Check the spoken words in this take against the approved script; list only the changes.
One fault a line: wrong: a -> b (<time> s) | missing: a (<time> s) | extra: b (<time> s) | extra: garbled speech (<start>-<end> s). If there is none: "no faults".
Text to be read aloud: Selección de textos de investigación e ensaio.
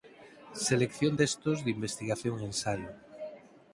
missing: de (1.1 s)